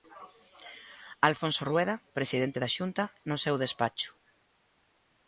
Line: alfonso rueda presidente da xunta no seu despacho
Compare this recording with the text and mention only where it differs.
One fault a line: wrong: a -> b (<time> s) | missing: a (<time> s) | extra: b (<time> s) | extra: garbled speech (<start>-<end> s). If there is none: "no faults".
no faults